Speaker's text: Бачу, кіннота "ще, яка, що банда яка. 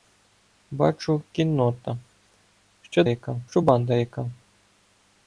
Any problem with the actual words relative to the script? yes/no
no